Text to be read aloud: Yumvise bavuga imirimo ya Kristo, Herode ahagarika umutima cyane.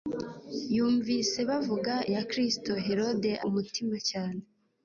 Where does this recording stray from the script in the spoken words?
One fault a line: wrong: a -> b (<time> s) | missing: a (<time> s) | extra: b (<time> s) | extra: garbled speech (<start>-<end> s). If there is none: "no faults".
missing: imirimo (1.9 s)
missing: ahagarika (3.3 s)